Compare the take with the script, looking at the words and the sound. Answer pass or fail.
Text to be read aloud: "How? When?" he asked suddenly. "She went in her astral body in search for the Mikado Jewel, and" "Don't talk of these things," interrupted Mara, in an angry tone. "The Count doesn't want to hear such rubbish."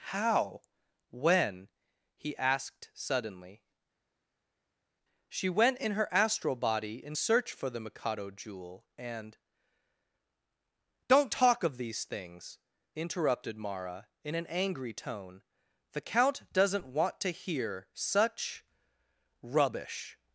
pass